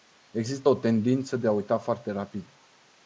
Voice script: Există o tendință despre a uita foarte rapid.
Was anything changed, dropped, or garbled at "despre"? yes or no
yes